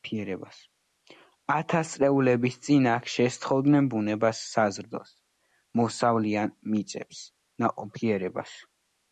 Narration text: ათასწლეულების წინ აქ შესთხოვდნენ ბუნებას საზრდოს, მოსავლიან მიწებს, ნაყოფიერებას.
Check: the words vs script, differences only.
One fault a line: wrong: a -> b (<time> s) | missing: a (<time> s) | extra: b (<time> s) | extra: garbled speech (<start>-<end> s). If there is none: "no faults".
no faults